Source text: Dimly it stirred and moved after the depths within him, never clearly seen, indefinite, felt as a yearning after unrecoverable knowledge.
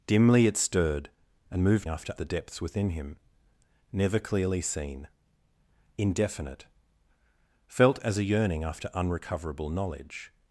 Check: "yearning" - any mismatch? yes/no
no